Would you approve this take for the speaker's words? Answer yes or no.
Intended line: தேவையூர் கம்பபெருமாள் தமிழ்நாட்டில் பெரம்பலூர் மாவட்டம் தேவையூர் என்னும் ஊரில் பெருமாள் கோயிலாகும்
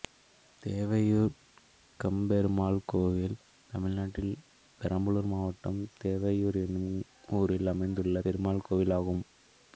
no